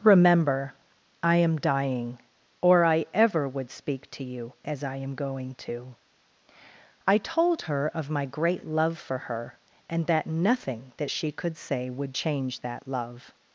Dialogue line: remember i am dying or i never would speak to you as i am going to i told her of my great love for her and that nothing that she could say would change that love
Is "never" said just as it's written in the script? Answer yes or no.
no